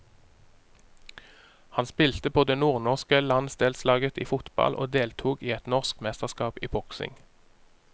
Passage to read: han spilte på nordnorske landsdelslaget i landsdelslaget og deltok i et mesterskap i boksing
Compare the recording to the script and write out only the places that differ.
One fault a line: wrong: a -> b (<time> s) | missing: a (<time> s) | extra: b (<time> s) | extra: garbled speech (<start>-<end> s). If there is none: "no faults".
extra: det (2.4 s)
wrong: landsdelslaget -> fotball (4.2 s)
extra: norsk (5.7 s)